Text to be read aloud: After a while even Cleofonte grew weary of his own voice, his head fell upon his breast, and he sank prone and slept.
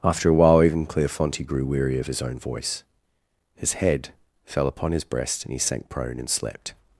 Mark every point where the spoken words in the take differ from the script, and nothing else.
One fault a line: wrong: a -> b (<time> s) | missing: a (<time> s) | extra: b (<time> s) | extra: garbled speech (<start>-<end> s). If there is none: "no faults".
no faults